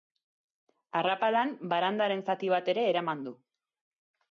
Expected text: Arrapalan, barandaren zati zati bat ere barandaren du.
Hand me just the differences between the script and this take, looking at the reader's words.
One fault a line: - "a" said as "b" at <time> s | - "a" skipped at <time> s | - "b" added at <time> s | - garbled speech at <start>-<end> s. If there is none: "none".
- "zati" skipped at 2.5 s
- "barandaren" said as "eraman" at 3.0 s